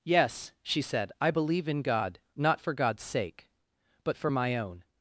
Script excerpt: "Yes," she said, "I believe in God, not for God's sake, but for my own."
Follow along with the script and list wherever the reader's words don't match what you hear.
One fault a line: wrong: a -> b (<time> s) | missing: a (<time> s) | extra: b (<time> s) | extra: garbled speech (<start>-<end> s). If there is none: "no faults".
no faults